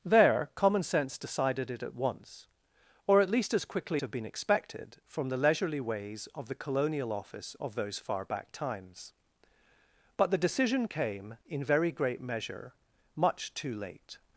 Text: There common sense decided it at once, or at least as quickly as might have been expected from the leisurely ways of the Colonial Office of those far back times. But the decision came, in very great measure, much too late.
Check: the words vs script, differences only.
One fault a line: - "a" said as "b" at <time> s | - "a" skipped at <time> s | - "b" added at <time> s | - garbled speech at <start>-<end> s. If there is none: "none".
- "as might" skipped at 4.0 s